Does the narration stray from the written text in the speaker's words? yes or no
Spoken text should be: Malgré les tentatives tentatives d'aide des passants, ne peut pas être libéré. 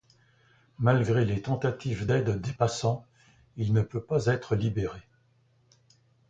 yes